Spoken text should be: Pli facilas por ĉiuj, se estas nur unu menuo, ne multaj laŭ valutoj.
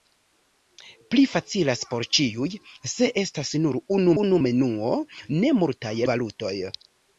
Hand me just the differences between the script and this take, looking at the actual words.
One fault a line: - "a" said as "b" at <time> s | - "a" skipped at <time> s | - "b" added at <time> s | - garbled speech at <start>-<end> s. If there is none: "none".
- "unu" added at 4.2 s
- "laŭ" skipped at 5.9 s